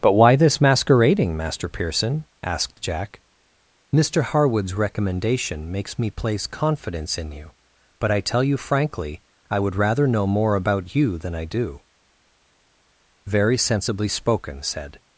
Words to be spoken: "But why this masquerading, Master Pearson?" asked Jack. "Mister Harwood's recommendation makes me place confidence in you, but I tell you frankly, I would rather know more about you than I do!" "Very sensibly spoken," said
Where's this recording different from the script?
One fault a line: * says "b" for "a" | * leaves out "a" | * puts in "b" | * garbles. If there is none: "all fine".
all fine